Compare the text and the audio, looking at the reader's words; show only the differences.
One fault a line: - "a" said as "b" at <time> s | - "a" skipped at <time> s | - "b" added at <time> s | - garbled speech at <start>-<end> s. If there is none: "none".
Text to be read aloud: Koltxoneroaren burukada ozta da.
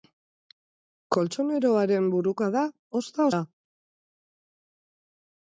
none